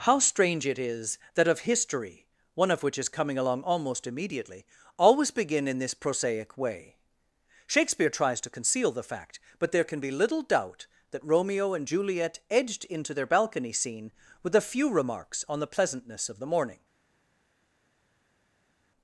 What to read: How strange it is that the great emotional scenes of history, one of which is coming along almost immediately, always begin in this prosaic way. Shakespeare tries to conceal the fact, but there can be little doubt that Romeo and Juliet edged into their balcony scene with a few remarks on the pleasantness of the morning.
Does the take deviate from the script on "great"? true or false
true